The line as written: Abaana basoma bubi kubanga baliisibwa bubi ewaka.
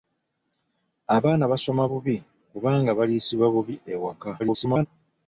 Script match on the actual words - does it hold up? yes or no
no